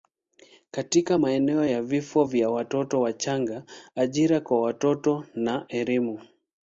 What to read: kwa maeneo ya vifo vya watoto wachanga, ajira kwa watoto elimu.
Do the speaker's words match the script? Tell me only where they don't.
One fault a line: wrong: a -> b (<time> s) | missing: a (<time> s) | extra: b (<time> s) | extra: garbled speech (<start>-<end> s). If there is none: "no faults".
wrong: kwa -> katika (0.7 s)
extra: na (5.3 s)